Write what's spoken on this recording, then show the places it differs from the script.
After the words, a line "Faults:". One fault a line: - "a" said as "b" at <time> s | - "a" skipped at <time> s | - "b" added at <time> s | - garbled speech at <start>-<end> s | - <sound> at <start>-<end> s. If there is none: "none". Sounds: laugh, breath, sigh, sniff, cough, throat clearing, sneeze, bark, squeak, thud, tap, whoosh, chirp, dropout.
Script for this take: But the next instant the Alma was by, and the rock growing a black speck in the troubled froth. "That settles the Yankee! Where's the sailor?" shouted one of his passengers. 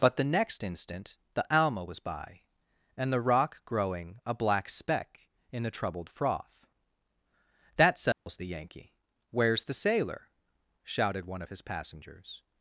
But the next instant the Alma was by, and the rock growing a black speck in the troubled froth. "That settles the Yankee! Where's the sailor?" shouted one of his passengers.
Faults:
- dropout at 8.1-8.3 s